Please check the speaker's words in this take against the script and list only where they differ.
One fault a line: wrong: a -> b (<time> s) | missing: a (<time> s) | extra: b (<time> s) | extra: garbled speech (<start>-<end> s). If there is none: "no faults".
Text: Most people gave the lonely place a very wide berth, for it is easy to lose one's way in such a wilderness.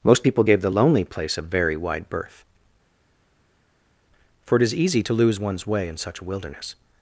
no faults